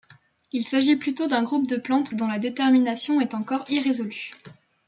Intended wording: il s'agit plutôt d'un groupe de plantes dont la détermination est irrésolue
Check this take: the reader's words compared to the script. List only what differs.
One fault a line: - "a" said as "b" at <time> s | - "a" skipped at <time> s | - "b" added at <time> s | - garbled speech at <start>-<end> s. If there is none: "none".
- "encore" added at 3.3 s